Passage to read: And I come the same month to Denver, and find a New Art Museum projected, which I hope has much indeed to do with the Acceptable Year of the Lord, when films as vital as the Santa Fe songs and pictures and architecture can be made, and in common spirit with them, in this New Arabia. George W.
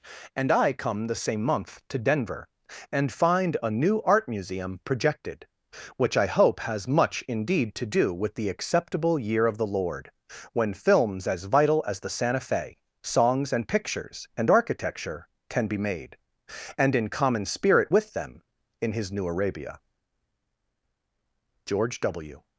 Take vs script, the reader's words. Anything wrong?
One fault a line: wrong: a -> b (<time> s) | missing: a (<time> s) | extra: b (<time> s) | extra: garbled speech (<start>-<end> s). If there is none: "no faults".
wrong: this -> his (18.9 s)